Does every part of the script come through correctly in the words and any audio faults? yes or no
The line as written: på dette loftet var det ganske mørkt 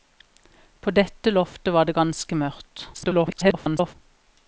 no